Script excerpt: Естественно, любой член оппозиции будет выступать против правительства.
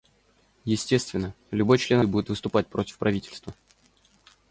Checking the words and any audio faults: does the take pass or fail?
fail